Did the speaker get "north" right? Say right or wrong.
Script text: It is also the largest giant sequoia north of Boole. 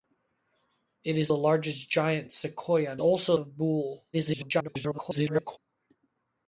wrong